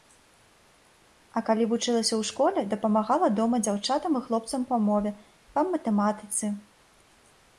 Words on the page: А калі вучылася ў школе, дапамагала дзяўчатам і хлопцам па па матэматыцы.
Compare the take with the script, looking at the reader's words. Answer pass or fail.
fail